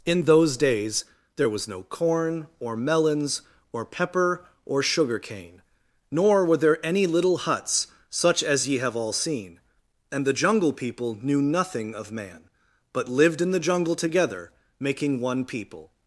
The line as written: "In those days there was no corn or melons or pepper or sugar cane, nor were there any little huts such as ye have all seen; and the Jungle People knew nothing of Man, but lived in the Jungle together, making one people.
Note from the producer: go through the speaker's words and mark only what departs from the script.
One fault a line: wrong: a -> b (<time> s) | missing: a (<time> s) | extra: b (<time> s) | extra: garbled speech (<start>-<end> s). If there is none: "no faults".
no faults